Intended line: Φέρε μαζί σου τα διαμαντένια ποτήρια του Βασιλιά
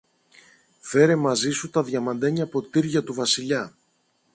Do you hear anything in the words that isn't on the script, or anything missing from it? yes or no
no